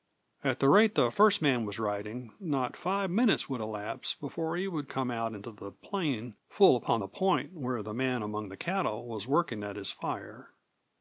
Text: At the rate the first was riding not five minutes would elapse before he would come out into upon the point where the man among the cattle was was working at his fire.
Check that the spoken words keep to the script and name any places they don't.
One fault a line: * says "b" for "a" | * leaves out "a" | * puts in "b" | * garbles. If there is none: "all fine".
* puts in "man"
* puts in "the plain full"
* leaves out "was"